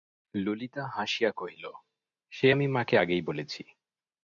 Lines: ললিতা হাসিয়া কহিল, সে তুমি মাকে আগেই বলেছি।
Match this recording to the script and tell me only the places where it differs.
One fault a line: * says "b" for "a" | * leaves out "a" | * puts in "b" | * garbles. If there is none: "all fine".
* says "আমি" for "তুমি"